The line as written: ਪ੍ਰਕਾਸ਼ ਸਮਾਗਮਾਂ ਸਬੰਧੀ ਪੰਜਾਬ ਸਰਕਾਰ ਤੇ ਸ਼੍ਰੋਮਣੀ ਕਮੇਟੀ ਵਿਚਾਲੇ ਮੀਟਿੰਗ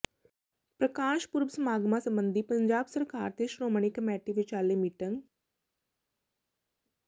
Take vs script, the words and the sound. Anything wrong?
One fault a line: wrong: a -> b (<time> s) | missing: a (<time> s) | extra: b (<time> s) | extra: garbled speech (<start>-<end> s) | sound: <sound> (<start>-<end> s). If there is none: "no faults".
extra: ਪੁਰਬ (1.3 s)